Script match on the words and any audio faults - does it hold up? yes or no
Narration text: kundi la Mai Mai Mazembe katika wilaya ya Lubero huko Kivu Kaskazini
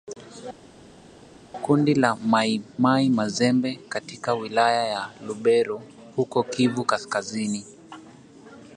yes